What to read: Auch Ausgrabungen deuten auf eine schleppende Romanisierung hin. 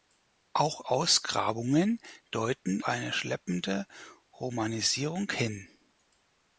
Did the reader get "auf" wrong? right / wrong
wrong